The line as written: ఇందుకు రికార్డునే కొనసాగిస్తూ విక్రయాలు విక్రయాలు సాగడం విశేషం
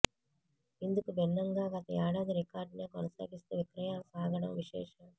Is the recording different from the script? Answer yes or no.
yes